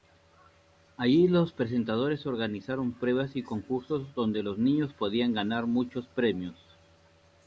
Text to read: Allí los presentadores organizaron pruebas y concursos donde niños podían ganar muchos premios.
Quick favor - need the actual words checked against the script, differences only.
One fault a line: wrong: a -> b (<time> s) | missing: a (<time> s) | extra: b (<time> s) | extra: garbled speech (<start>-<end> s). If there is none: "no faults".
extra: los (4.4 s)